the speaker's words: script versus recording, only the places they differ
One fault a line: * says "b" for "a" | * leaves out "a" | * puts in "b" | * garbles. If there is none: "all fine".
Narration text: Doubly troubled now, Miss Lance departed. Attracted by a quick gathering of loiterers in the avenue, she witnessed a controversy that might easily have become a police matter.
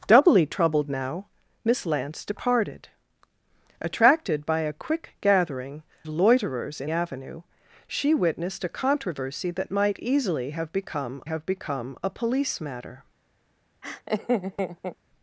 * leaves out "of"
* leaves out "the"
* puts in "have become"